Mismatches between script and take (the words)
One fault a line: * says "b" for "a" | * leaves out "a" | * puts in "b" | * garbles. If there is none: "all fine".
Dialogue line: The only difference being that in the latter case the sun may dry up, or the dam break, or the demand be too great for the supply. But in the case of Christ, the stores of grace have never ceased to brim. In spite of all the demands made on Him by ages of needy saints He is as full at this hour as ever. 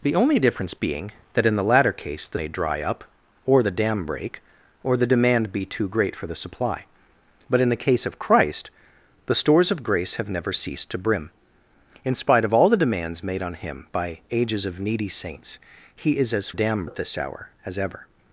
* leaves out "sun"
* says "dam" for "full"